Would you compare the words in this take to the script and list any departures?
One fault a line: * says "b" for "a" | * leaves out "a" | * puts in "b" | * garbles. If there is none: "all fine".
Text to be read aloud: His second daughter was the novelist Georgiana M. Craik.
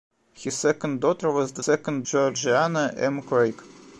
* says "second" for "novelist"